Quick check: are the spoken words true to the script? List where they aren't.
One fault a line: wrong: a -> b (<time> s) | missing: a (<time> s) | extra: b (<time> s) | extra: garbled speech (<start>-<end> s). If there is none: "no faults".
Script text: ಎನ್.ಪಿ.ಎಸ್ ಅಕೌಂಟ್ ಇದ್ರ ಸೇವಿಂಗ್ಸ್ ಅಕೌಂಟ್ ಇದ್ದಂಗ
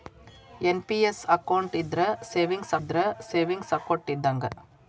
extra: ಇದ್ರ ಸೇವಿಂಗ್ಸ್ (2.8 s)